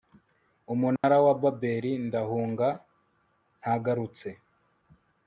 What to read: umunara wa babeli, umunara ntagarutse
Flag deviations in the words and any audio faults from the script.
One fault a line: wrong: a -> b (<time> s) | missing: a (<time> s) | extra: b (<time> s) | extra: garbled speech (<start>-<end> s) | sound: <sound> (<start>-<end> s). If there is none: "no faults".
sound: dropout (1.0-1.0 s)
wrong: umunara -> ndahunga (2.1 s)